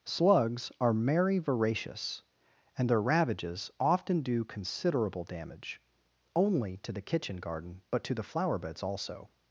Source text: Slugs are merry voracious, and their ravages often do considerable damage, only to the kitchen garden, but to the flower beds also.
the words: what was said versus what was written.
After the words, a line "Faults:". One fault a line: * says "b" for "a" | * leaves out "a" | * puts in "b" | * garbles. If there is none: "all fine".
Slugs are merry voracious, and their ravages often do considerable damage, only to the kitchen garden, but to the flower beds also.
Faults:
all fine